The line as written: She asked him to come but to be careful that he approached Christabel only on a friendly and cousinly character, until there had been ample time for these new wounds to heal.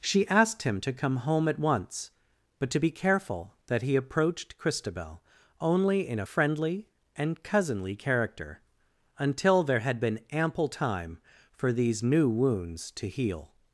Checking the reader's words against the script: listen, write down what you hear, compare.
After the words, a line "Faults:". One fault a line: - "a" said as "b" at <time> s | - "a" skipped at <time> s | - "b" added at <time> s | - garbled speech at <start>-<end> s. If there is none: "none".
She asked him to come home at once, but to be careful that he approached Christabel only in a friendly and cousinly character, until there had been ample time for these new wounds to heal.
Faults:
- "home at once" added at 1.2 s
- "on" said as "in" at 6.1 s